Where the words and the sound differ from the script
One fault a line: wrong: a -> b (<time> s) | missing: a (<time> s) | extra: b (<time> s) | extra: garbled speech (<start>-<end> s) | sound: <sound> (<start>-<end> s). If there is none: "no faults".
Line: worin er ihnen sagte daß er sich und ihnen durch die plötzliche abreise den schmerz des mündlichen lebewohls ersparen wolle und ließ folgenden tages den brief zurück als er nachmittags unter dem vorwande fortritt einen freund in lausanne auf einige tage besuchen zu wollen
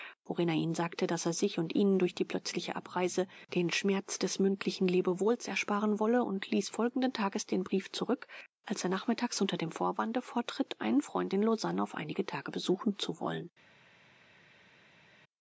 no faults